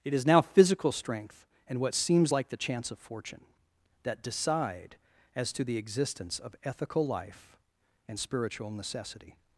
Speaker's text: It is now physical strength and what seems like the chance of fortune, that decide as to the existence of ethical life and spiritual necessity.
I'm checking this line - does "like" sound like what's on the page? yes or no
yes